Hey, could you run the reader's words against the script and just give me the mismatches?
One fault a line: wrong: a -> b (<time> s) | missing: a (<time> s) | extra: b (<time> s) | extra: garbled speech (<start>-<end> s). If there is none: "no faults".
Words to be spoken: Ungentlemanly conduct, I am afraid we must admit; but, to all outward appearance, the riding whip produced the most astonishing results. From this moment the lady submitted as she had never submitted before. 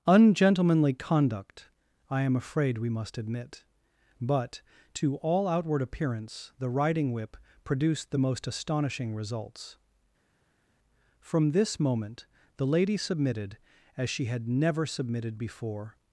no faults